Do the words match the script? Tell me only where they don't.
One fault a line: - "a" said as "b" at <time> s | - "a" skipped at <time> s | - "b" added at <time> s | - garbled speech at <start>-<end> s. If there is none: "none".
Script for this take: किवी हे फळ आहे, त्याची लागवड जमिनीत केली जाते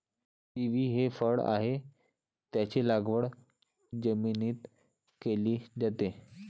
none